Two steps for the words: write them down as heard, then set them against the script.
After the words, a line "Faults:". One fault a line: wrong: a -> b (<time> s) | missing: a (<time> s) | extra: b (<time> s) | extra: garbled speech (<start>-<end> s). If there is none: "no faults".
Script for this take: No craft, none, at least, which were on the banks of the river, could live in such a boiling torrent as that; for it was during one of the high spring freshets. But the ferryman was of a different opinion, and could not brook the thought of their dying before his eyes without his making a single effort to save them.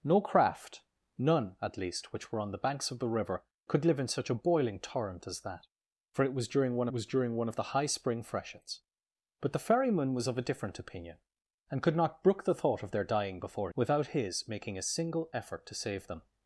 No craft, none, at least, which were on the banks of the river, could live in such a boiling torrent as that; for it was during one was during one of the high spring freshets. But the ferryman was of a different opinion, and could not brook the thought of their dying before without his making a single effort to save them.
Faults:
extra: was during one (6.9 s)
missing: his eyes (13.7 s)